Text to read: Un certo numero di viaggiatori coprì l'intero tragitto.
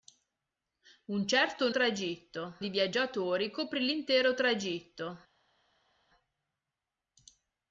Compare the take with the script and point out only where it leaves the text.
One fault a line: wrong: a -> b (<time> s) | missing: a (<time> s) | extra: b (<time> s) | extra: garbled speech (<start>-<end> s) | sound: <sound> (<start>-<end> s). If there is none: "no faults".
wrong: numero -> tragitto (1.7 s)